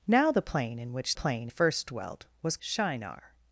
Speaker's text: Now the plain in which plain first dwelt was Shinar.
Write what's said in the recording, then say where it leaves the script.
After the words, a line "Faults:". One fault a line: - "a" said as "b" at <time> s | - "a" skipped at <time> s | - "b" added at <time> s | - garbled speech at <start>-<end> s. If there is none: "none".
Now the plain in which plain first dwelt was Shinar.
Faults:
none